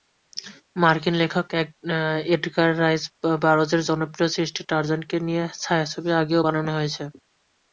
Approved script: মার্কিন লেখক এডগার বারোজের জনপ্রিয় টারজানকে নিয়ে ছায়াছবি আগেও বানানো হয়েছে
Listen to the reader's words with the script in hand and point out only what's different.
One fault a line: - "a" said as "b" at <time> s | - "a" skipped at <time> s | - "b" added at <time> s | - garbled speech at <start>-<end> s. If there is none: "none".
- "রাইস" added at 2.8 s
- "সৃষ্টি" added at 4.4 s